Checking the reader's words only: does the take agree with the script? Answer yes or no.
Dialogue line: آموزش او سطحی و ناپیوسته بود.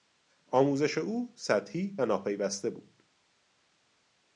yes